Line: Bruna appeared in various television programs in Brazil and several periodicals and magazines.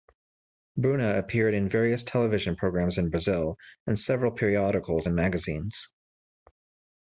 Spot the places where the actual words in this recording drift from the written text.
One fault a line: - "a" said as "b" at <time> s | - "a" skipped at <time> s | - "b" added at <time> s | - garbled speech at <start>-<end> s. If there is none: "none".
none